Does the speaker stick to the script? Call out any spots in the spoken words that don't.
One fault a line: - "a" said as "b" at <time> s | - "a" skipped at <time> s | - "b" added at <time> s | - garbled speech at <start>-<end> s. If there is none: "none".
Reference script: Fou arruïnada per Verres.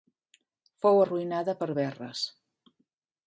none